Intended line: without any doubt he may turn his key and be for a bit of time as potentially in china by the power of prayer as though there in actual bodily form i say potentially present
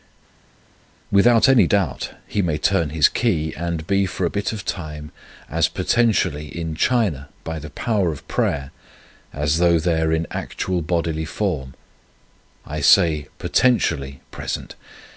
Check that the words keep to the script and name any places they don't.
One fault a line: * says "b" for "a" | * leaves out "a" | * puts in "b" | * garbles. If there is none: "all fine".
all fine